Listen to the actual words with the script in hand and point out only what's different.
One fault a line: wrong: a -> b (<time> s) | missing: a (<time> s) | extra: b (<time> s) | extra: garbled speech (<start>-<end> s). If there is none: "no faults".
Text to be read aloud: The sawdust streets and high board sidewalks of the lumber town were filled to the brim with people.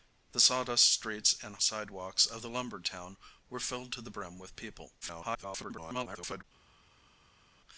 missing: high board (1.6 s)
extra: garbled speech (5.0-6.4 s)